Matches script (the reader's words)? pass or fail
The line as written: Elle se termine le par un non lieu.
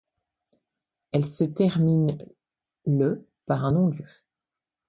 pass